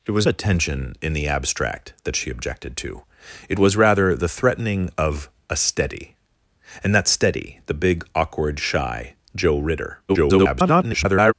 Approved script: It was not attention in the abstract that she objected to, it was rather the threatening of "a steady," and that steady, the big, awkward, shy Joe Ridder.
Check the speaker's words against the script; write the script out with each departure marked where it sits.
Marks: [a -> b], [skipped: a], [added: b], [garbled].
It was [skipped: not] attention in the abstract that she objected to, it was rather the threatening of "a steady," and that steady, the big, awkward, shy Joe Ridder. [garbled]